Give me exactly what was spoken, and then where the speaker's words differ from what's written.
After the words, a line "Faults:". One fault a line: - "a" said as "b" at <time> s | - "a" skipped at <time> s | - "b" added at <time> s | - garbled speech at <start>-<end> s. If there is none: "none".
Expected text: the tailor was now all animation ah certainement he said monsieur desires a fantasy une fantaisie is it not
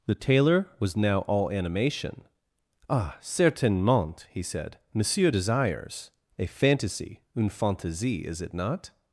the tailor was now all animation ah certainement he said monsieur desires a fantasy une fantaisie is it not
Faults:
none